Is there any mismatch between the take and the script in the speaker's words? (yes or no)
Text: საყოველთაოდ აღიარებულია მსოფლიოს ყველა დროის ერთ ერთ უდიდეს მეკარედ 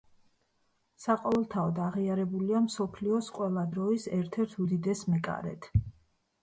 no